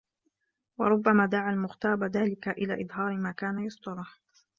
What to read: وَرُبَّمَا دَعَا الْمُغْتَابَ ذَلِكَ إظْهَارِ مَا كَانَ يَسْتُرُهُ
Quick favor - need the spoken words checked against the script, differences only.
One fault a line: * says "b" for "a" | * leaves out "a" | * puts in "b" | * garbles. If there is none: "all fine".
* puts in "إلَى"